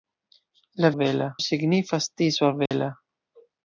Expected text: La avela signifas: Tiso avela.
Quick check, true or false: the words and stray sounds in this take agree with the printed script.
false